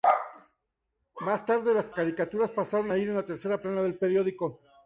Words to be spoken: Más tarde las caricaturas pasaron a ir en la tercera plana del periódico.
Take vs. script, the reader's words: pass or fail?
pass